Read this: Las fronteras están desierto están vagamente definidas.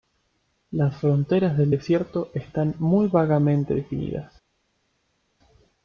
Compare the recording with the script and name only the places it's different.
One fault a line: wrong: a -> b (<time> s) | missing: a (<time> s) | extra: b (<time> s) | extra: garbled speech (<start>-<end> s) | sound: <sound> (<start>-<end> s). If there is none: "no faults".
wrong: están -> del (1.6 s)
extra: muy (2.8 s)